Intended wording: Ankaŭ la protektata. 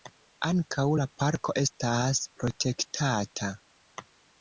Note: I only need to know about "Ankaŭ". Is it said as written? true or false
true